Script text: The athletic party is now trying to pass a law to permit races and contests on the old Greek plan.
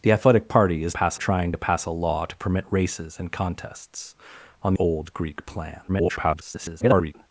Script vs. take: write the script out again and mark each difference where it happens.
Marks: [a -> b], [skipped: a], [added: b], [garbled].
The athletic party is [now -> pass] trying to pass a law to permit races and contests on [skipped: the] old Greek plan. [garbled]